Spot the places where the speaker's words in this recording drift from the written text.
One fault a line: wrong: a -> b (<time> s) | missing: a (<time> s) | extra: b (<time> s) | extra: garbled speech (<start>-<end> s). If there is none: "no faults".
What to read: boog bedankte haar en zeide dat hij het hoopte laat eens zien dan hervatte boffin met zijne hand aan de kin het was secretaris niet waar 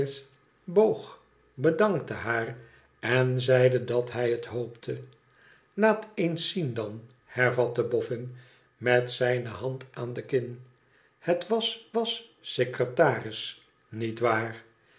extra: was (11.9 s)